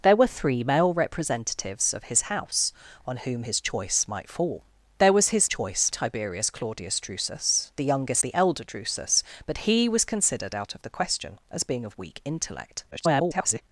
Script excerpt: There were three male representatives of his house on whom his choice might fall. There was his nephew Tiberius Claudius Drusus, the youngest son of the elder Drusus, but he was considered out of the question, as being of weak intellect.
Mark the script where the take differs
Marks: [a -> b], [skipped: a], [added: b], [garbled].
There were three male representatives of his house on whom his choice might fall. There was his [nephew -> choice] Tiberius Claudius Drusus, the youngest [skipped: son of] the elder Drusus, but he was considered out of the question, as being of weak intellect. [garbled]